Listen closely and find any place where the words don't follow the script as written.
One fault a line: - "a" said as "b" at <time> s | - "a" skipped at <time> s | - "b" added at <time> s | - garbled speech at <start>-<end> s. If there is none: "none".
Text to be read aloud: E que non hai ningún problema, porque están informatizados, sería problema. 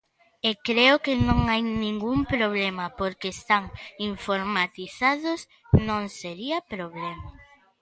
- "creo" added at 0.7 s
- "non" added at 5.9 s